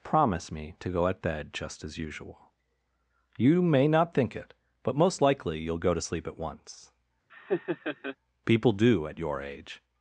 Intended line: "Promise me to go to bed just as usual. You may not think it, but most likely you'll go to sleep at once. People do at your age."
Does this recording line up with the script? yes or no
no